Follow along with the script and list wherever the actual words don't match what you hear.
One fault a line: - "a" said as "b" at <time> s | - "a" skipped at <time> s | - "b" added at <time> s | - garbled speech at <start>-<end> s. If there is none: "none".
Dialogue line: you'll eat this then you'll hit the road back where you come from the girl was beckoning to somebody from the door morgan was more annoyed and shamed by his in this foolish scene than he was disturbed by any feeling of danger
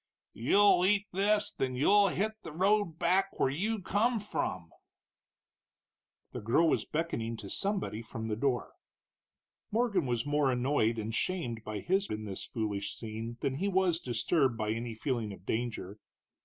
none